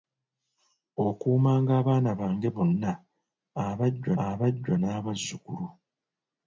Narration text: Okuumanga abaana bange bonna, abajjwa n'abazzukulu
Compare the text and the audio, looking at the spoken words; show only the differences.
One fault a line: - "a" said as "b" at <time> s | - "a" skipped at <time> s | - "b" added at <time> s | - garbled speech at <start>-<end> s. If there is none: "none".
- "abajjwa" added at 4.3 s